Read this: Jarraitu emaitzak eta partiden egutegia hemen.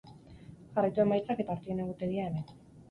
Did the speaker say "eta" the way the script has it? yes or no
no